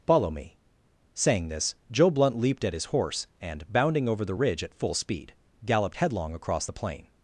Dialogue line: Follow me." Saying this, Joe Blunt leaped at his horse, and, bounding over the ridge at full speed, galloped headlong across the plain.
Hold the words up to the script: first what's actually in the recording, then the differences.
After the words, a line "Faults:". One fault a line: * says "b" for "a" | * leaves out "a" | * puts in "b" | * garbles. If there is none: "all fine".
Follow me." Saying this, Joe Blunt leaped at his horse, and, bounding over the ridge at full speed, galloped headlong across the plain.
Faults:
all fine